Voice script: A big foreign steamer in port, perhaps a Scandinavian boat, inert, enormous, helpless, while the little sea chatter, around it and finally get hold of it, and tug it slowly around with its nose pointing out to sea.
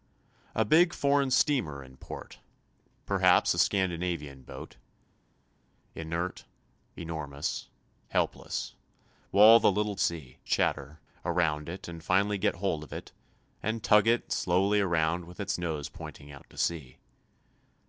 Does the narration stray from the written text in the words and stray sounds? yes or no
no